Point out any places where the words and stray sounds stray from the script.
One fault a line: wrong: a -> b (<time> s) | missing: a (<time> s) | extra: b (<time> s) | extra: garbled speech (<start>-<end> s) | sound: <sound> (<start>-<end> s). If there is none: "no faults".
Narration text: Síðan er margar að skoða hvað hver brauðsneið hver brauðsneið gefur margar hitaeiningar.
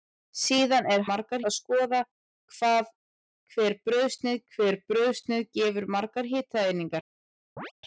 sound: chirp (7.6-7.7 s)